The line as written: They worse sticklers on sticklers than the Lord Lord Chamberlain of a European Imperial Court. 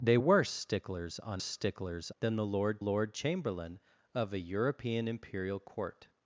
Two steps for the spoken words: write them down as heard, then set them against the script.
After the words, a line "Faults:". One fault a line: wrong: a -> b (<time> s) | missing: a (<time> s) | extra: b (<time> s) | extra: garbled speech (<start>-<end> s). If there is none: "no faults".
They worse sticklers on sticklers than the Lord Lord Chamberlain of a European Imperial Court.
Faults:
no faults